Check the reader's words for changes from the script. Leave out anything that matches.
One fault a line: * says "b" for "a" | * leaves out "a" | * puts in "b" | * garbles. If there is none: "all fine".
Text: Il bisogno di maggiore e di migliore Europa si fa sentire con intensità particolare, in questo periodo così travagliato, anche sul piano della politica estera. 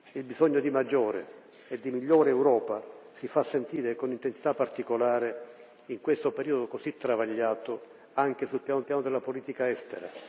* puts in "piano"